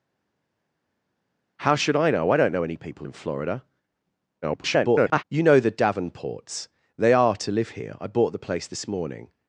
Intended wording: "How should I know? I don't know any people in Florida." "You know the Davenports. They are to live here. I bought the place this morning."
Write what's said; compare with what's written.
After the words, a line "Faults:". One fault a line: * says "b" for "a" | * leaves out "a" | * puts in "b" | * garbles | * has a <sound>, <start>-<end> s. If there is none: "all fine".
"How should I know? I don't know any people in Florida." [garbled] "You know the Davenports. They are to live here. I bought the place this morning."
Faults:
* garbles